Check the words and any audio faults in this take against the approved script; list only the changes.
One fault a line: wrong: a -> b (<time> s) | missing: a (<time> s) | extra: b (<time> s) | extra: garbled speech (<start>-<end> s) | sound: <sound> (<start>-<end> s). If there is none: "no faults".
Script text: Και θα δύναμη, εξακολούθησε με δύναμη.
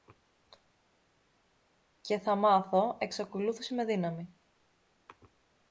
wrong: δύναμη -> μάθω (2.4 s)